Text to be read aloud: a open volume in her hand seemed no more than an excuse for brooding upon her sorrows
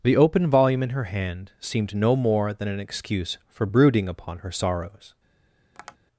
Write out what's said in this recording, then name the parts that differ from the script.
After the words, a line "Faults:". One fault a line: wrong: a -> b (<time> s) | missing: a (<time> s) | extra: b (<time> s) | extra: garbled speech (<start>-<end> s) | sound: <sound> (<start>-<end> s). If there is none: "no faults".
the open volume in her hand seemed no more than an excuse for brooding upon her sorrows
Faults:
wrong: a -> the (0.0 s)
sound: tap (5.7-6.0 s)